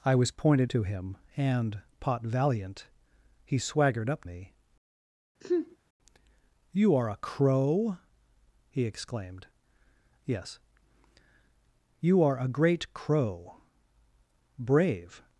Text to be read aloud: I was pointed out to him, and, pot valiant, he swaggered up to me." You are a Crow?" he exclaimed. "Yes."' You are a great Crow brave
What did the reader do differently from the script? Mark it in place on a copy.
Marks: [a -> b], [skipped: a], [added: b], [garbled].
I was pointed [skipped: out] to him, and, pot valiant, he swaggered up [skipped: to] me." You are a Crow?" he exclaimed. "Yes."' You are a great Crow brave